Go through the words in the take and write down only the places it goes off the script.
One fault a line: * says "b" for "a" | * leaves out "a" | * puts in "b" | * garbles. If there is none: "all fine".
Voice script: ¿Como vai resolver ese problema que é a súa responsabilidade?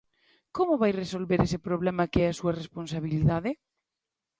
all fine